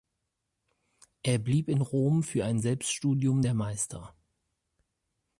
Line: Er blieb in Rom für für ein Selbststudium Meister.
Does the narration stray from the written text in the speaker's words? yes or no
yes